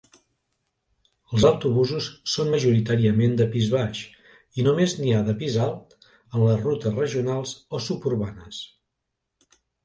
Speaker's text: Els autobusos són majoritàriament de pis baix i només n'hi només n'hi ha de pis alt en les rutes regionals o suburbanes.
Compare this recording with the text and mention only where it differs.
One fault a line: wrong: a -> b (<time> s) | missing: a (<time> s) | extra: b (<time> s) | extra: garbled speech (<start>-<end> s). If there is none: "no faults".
missing: només n'hi (5.1 s)